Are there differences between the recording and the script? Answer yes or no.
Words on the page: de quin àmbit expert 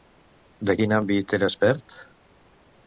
yes